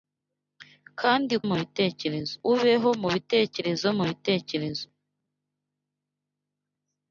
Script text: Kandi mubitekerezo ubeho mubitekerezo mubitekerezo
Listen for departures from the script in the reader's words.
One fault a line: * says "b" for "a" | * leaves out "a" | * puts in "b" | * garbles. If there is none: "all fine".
all fine